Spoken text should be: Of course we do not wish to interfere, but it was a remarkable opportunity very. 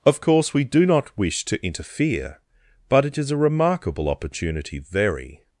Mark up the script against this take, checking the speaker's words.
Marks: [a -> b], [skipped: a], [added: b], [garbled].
Of course we do not wish to interfere, but it [was -> is] a remarkable opportunity very.